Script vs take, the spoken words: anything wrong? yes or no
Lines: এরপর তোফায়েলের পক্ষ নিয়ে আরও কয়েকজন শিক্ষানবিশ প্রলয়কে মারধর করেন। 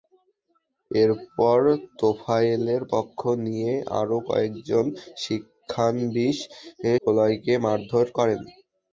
no